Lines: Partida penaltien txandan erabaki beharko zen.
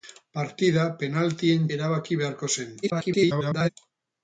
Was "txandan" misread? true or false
true